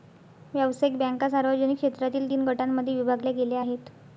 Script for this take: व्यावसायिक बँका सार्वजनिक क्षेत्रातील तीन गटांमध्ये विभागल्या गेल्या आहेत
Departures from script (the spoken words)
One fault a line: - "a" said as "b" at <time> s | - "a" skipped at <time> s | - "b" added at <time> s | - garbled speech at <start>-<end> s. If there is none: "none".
none